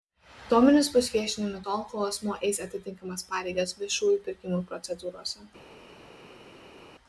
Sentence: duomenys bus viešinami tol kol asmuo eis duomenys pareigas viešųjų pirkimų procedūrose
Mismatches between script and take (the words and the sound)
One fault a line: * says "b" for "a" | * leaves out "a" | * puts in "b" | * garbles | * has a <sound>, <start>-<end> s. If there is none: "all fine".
* says "atitinkamas" for "duomenys"